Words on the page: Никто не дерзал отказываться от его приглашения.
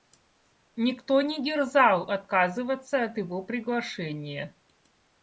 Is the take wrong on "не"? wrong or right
right